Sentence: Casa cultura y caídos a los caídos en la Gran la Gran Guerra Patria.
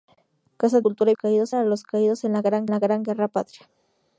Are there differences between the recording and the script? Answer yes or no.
no